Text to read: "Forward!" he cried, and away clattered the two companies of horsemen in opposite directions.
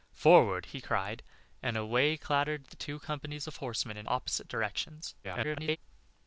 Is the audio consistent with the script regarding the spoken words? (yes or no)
no